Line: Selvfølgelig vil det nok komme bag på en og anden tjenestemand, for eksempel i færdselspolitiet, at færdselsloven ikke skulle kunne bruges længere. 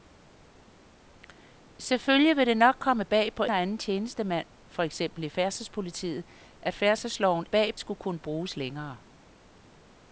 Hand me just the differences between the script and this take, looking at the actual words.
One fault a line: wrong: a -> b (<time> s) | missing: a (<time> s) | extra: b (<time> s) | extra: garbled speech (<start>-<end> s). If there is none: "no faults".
missing: en (3.4 s)
wrong: ikke -> bag (7.5 s)